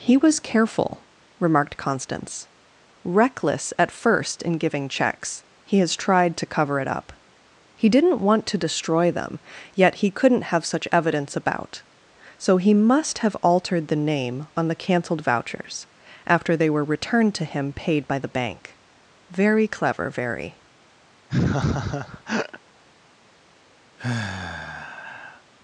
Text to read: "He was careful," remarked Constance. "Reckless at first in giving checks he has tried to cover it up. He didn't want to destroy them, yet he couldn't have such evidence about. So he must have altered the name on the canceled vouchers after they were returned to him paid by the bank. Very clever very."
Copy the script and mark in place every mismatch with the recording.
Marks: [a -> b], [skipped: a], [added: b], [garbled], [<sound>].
"He was careful," remarked Constance. "Reckless at first in giving checks he has tried to cover it up. He didn't want to destroy them, yet he couldn't have such evidence about. So he must have altered the name on the canceled vouchers after they were returned to him paid by the bank. Very clever very." [laugh] [sigh]